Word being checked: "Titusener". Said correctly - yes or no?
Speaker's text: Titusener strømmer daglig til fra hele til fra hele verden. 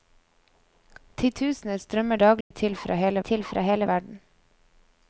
yes